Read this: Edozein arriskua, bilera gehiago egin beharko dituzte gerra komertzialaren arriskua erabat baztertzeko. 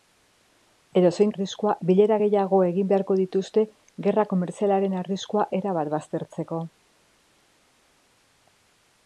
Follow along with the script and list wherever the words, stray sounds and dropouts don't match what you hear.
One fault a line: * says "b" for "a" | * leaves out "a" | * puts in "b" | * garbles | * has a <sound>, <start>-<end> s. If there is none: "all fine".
all fine